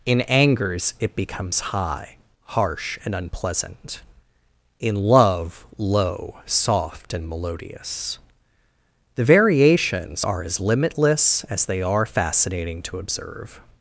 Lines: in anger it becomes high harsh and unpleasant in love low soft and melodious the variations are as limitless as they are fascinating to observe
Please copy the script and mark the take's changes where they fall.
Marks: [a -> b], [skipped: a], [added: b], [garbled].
in [anger -> angers] it becomes high harsh and unpleasant in love low soft and melodious the variations are as limitless as they are fascinating to observe